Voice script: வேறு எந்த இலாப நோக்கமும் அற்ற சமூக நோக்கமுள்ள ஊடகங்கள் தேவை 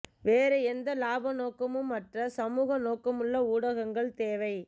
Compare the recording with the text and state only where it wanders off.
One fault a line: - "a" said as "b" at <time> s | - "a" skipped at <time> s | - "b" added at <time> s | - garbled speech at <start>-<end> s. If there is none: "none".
none